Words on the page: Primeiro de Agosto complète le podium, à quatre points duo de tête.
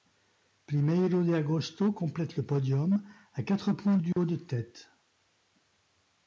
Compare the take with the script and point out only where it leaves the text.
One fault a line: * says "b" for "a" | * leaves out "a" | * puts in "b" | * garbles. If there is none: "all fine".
all fine